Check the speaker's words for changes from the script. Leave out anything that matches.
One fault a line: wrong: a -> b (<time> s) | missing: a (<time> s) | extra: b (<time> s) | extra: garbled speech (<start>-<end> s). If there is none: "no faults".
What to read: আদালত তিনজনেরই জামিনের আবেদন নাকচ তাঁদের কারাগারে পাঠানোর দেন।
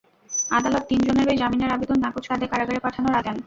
no faults